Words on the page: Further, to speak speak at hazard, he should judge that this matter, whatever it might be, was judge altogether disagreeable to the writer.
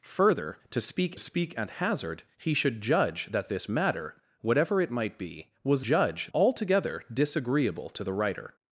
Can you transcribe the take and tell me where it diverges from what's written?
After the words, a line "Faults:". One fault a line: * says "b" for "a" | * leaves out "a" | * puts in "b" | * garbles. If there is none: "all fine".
Further, to speak speak at hazard, he should judge that this matter, whatever it might be, was judge altogether disagreeable to the writer.
Faults:
all fine